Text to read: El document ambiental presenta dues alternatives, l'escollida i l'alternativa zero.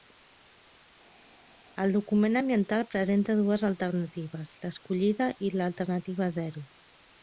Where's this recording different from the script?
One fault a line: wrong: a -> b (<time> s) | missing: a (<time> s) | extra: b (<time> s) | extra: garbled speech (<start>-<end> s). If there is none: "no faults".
no faults